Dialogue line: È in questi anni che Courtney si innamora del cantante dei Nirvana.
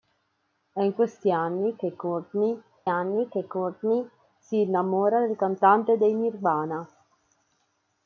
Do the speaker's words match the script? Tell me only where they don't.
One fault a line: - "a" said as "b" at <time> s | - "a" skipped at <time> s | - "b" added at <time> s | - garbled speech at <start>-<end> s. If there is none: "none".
- "anni che Courtney" added at 2.9 s